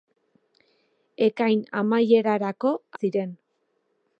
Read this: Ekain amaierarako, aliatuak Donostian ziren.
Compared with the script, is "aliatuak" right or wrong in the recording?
wrong